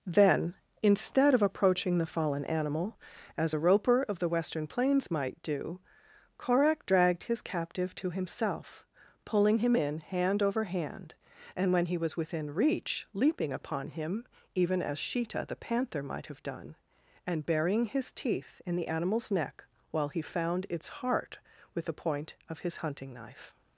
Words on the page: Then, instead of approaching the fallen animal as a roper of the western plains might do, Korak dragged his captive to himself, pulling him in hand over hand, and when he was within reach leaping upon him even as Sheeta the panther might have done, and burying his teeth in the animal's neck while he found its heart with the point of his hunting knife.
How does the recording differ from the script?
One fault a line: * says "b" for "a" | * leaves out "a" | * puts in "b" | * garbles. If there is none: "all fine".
all fine